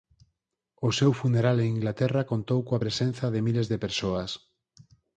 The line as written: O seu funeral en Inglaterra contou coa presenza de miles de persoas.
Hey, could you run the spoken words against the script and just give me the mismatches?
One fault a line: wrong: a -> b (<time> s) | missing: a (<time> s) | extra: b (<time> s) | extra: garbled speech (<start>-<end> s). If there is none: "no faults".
no faults